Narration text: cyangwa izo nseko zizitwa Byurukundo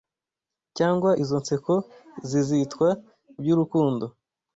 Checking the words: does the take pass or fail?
pass